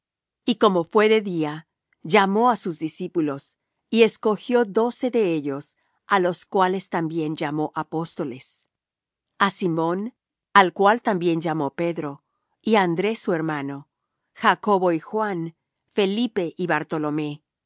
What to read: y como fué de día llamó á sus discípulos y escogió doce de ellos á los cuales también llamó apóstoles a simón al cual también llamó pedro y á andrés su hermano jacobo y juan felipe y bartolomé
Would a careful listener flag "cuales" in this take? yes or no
no